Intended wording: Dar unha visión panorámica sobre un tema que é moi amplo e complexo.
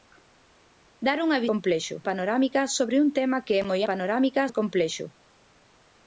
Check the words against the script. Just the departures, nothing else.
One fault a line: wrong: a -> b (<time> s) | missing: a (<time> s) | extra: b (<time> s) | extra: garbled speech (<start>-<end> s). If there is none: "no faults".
wrong: visión -> complexo (1.5 s)
wrong: amplo -> panorámica (3.9 s)